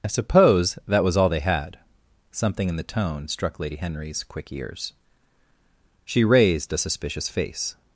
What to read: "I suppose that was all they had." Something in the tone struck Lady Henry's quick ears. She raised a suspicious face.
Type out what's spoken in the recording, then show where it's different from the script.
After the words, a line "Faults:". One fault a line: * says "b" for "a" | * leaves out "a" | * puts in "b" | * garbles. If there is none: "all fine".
"I suppose that was all they had." Something in the tone struck Lady Henry's quick ears. She raised a suspicious face.
Faults:
all fine